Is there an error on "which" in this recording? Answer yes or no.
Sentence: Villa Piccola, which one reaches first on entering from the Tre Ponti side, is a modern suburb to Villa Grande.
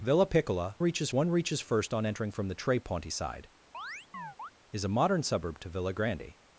yes